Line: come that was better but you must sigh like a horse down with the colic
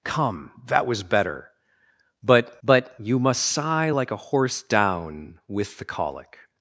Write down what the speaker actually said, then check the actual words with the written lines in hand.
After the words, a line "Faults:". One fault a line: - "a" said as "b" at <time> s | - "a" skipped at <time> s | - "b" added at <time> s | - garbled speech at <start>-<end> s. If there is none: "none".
come that was better but but you must sigh like a horse down with the colic
Faults:
- "but" added at 2.6 s